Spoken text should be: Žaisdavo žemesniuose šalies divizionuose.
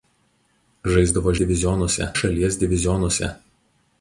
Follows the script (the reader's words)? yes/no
no